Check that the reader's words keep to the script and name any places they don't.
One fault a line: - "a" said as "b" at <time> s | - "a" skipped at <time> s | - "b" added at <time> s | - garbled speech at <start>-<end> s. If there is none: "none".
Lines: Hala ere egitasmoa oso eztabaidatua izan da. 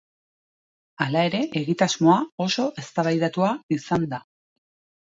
none